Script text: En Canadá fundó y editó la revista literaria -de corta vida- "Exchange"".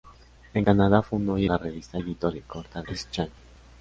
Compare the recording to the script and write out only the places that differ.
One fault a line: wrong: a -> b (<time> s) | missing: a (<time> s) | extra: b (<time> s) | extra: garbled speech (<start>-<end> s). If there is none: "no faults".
missing: editó (1.4 s)
wrong: literaria -> editó (2.0 s)
missing: vida (2.8 s)